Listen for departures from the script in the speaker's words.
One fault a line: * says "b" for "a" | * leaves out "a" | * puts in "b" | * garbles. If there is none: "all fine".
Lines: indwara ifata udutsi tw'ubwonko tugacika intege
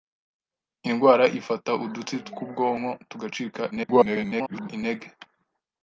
* garbles